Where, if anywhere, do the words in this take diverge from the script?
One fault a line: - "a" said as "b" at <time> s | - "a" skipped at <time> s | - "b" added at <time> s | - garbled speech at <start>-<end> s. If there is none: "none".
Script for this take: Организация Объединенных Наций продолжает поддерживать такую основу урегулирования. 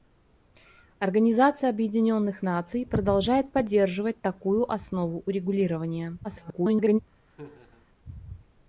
- garbled speech at 6.2-7.0 s